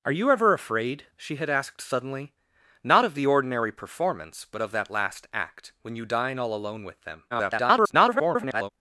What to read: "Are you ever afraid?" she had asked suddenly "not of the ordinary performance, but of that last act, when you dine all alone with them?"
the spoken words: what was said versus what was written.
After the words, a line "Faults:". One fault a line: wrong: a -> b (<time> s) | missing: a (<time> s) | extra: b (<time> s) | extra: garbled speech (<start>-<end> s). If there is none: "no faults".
"Are you ever afraid?" she had asked suddenly "not of the ordinary performance, but of that last act, when you dine all alone with them?" [garbled]
Faults:
extra: garbled speech (7.3-8.7 s)